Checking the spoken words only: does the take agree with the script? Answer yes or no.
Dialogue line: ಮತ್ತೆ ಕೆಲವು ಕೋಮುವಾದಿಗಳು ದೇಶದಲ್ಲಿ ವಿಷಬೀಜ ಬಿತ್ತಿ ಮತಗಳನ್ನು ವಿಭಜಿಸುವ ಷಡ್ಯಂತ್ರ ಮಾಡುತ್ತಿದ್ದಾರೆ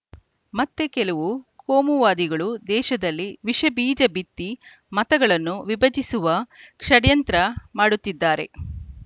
yes